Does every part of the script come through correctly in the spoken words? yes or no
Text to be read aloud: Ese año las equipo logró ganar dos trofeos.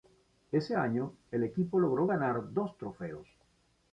no